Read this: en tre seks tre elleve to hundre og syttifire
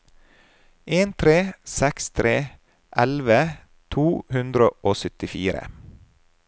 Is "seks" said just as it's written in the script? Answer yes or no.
yes